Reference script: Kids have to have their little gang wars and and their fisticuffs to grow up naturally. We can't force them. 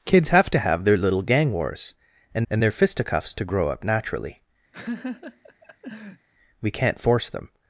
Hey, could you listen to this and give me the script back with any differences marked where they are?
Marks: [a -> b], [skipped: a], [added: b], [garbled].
Kids have to have their little gang wars and and their fisticuffs to grow up naturally. We can't force them.